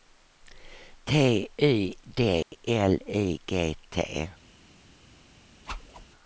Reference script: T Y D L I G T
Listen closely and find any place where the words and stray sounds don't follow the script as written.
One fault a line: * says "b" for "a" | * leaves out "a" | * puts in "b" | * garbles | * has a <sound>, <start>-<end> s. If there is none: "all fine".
* has a dropout, 2.4-2.5 s
* has a whoosh, 5.7-6.1 s